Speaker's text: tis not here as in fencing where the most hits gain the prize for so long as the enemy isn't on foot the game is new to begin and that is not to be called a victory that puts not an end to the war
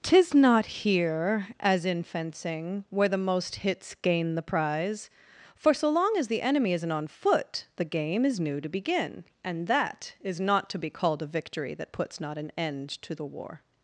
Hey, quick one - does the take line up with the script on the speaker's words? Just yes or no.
yes